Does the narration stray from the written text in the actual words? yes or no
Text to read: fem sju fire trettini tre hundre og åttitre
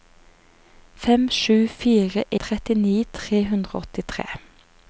no